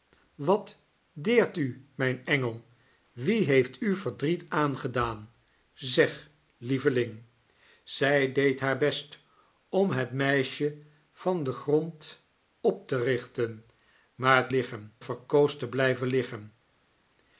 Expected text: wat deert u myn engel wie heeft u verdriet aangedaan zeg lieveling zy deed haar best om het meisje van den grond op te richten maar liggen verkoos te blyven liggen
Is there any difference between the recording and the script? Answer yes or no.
no